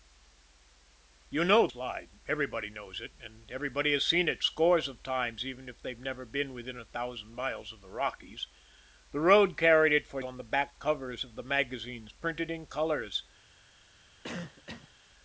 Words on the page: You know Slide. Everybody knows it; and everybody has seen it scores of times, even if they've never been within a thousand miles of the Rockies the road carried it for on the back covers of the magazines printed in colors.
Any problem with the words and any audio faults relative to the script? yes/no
yes